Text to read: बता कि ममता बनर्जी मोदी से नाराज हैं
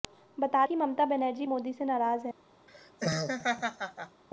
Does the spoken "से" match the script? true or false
true